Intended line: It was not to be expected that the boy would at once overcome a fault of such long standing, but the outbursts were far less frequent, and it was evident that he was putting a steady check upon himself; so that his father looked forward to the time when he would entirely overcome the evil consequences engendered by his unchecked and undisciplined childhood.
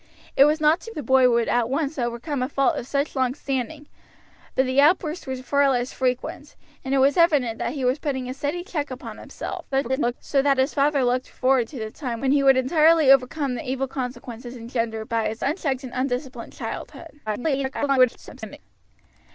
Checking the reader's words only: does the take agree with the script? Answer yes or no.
no